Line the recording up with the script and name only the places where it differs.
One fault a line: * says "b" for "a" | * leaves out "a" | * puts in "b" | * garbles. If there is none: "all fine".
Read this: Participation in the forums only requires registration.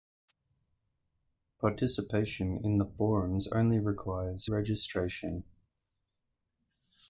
all fine